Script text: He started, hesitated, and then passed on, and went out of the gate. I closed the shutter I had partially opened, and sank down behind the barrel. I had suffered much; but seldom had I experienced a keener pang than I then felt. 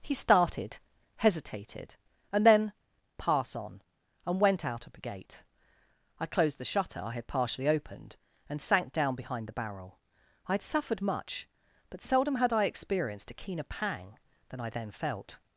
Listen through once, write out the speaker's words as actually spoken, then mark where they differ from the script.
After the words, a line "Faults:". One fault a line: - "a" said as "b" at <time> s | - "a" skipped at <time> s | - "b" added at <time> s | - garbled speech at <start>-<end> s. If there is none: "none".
He started, hesitated, and then pass on, and went out of the gate. I closed the shutter I had partially opened, and sank down behind the barrel. I had suffered much; but seldom had I experienced a keener pang than I then felt.
Faults:
- "passed" said as "pass" at 3.2 s